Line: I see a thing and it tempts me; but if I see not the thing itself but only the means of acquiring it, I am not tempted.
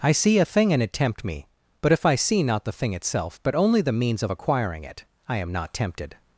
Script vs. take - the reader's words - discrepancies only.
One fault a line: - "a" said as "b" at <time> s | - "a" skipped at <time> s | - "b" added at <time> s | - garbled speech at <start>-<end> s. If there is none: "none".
- "tempts" said as "tempt" at 0.9 s